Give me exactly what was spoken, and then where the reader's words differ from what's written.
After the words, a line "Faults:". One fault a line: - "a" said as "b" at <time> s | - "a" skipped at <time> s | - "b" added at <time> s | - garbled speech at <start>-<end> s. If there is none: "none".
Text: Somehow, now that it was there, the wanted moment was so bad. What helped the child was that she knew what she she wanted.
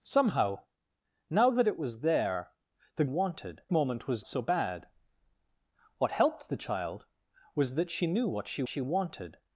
Somehow, now that it was there, the wanted moment was so bad. What helped the child was that she knew what she she wanted.
Faults:
none